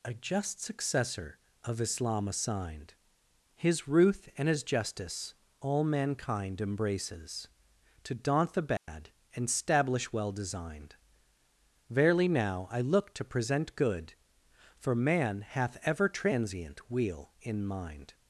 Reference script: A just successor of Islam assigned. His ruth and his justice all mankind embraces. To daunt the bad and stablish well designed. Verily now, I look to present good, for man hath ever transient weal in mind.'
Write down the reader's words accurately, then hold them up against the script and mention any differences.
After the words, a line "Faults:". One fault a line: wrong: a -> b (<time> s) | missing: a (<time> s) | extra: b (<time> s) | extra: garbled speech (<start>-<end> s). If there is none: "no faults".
A just successor of Islam assigned. His ruth and his justice all mankind embraces. To daunt the bad and stablish well designed. Verily now, I look to present good, for man hath ever transient weal in mind.'
Faults:
no faults